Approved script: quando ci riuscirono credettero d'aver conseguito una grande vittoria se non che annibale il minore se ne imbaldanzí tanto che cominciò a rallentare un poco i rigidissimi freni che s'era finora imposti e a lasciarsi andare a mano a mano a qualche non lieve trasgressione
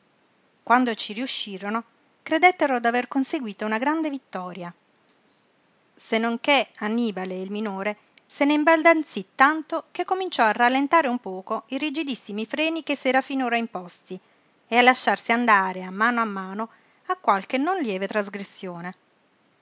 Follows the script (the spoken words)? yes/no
yes